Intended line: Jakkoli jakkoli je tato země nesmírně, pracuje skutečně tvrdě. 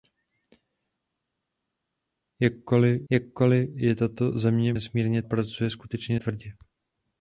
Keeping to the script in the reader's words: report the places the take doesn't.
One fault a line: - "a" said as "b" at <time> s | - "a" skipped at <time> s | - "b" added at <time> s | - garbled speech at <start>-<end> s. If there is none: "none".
none